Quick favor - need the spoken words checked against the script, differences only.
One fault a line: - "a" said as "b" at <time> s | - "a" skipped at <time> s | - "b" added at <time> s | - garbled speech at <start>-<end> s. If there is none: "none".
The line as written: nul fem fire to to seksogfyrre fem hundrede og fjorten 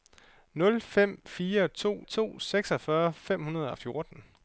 none